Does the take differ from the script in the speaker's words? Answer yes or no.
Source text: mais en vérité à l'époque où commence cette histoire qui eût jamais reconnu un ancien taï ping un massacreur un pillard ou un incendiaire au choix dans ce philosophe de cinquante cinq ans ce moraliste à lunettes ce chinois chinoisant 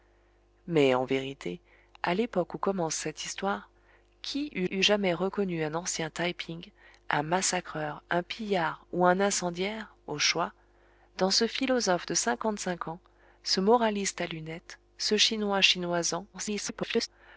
yes